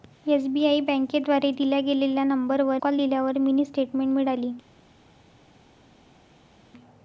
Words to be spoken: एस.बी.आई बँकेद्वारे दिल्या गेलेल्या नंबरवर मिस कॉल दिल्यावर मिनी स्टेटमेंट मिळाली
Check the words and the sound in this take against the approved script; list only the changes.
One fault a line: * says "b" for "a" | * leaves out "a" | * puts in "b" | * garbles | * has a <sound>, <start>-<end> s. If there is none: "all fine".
* leaves out "मिस"